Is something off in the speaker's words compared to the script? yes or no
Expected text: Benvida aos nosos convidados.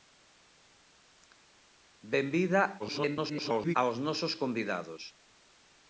yes